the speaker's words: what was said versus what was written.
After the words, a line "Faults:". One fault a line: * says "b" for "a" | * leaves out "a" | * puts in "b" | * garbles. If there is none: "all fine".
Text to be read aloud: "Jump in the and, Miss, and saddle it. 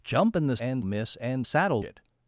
"Jump in the and, Miss, and saddle it.
Faults:
all fine